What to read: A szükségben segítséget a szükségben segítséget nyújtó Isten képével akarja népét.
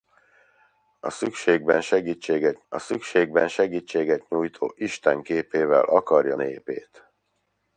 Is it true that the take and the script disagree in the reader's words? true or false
false